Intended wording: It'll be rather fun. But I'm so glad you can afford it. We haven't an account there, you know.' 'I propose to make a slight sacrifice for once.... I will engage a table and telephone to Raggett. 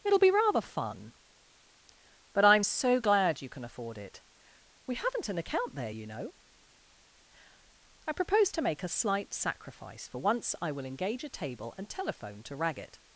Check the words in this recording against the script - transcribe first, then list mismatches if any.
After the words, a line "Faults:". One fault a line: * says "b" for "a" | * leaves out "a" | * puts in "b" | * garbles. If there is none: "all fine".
It'll be rather fun. But I'm so glad you can afford it. We haven't an account there, you know.' 'I propose to make a slight sacrifice for once.... I will engage a table and telephone to Raggett.
Faults:
all fine